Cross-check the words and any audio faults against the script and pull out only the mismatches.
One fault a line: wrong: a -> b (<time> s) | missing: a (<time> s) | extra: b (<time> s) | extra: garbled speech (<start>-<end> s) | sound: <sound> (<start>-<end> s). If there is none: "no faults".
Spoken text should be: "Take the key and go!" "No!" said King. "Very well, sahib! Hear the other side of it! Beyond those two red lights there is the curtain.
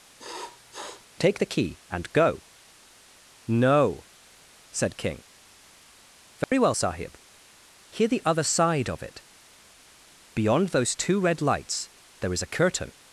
sound: sniff (0.2-1.1 s)
sound: dropout (6.4-6.5 s)
wrong: the -> a (12.4 s)